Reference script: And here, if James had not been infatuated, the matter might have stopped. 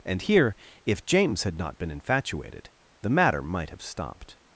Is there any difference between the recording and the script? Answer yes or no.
no